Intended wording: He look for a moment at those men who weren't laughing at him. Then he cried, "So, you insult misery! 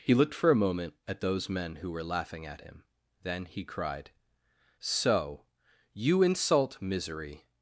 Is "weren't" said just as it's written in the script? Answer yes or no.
no